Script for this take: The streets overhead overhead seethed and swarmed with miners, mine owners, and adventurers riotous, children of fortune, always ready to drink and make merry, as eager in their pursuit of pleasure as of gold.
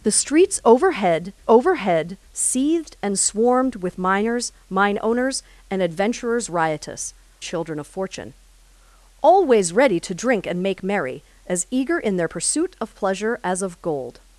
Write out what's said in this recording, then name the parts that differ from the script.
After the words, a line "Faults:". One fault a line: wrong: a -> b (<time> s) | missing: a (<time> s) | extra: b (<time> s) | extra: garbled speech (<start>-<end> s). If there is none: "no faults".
The streets overhead overhead seethed and swarmed with miners, mine owners, and adventurers riotous, children of fortune, always ready to drink and make merry, as eager in their pursuit of pleasure as of gold.
Faults:
no faults